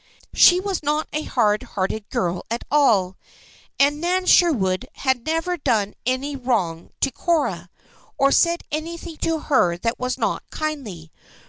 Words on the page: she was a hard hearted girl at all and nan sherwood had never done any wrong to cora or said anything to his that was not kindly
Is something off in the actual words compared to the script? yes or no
yes